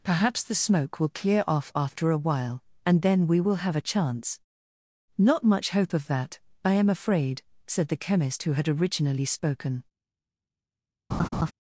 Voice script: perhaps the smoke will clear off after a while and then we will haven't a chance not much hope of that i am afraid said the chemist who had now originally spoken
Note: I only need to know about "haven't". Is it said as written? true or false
false